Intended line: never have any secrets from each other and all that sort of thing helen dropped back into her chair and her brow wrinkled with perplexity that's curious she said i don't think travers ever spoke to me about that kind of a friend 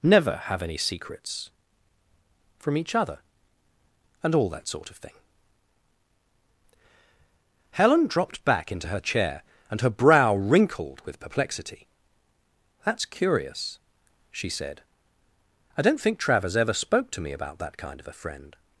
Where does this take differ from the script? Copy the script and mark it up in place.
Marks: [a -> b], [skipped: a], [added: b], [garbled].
never have any secrets from each other and all that sort of thing helen dropped back into her chair and her brow wrinkled with perplexity that's curious she said i don't think travers ever spoke to me about that kind of a friend